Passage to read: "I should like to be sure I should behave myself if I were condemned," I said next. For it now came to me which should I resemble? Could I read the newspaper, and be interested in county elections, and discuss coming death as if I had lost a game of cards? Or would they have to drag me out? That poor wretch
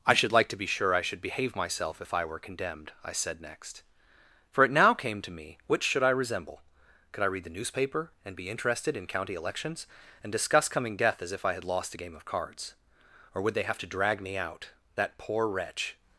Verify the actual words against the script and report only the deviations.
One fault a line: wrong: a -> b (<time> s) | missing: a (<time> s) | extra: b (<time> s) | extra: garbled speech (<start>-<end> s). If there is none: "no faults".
no faults